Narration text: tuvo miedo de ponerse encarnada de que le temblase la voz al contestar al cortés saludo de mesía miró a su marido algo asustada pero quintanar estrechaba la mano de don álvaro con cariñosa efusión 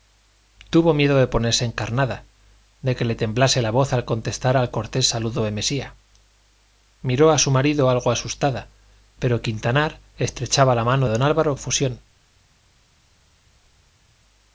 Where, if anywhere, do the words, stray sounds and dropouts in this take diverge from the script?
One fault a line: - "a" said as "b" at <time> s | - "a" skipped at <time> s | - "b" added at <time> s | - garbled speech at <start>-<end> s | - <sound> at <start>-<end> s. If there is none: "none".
- "de" skipped at 11.1 s
- "con cariñosa" skipped at 11.5 s